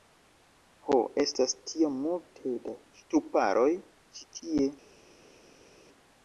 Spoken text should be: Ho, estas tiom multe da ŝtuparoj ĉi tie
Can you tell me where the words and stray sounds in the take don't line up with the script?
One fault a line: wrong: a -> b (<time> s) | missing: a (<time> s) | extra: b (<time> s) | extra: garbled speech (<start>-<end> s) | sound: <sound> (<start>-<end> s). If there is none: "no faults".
no faults